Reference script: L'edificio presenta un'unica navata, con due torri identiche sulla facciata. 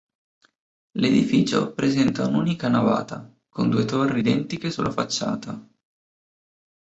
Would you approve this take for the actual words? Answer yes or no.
yes